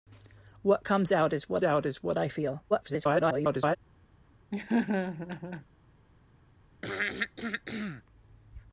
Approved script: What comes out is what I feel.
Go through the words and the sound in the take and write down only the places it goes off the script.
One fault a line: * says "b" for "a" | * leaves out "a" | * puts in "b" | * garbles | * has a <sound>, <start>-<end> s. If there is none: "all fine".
* puts in "out is what"
* garbles
* has a laugh, 4.5-5.7 s
* has a throat clearing, 6.8-8.0 s